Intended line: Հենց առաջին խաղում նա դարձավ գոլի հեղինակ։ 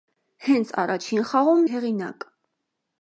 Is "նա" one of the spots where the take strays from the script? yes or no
yes